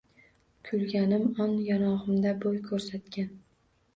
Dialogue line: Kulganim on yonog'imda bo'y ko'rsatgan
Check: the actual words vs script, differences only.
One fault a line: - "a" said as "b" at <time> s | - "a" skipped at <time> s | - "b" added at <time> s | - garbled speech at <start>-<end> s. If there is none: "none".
none